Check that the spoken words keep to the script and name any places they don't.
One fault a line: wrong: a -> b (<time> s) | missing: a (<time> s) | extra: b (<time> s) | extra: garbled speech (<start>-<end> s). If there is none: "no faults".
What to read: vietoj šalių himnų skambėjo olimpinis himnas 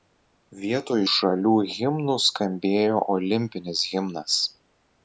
no faults